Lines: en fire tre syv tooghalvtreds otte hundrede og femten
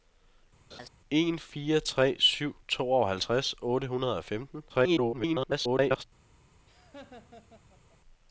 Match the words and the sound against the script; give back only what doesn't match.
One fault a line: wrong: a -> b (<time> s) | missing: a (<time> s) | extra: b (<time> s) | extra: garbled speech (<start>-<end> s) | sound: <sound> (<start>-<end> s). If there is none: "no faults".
sound: laugh (0.7-0.9 s)
extra: garbled speech (4.7-6.0 s)
sound: laugh (6.7-8.0 s)